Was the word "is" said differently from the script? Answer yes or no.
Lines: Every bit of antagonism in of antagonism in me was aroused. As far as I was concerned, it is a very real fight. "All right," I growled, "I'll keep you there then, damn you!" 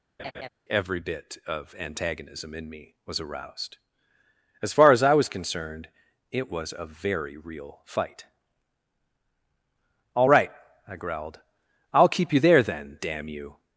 yes